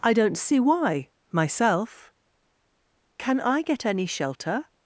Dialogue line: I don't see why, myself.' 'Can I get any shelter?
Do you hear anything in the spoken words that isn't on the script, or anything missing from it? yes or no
no